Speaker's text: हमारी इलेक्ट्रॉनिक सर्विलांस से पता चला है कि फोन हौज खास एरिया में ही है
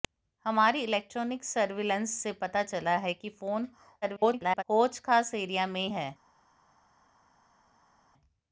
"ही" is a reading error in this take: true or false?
true